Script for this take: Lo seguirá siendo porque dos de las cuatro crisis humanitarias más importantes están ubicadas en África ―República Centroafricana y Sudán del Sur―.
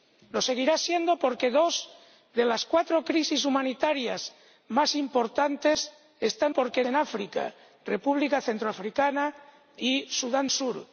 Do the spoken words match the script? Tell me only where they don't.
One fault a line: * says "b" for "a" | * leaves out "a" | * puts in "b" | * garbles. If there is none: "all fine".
* says "porque" for "ubicadas"
* leaves out "del"